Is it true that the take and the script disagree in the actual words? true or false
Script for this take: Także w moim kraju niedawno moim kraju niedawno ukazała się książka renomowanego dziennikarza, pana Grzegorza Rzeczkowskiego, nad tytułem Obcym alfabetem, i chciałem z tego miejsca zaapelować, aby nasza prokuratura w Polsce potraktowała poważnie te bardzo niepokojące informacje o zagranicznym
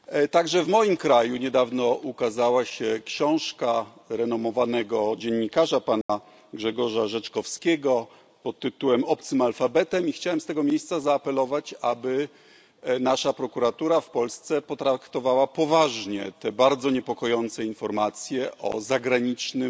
true